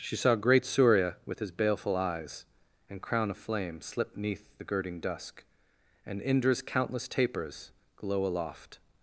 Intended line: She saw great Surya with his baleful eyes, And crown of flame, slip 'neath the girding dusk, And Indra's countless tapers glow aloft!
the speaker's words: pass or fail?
pass